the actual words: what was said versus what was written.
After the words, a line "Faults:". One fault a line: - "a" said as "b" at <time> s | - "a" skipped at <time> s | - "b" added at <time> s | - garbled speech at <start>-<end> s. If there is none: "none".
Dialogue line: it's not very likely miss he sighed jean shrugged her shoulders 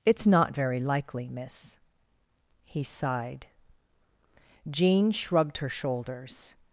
it's not very likely miss he sighed jean shrugged her shoulders
Faults:
none